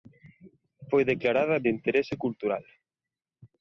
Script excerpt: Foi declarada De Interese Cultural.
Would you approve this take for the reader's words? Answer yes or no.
yes